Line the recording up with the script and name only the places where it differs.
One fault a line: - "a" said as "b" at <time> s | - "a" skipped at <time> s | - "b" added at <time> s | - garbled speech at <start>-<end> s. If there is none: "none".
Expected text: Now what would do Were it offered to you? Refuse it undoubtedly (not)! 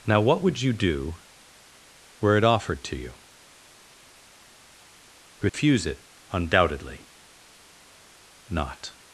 - "you" added at 0.6 s